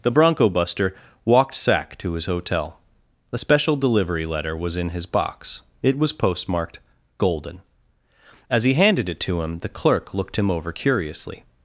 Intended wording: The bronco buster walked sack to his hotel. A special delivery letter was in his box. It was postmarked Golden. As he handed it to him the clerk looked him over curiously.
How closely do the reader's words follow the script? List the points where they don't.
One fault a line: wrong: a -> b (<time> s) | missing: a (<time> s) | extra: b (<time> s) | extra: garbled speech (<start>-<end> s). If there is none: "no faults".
no faults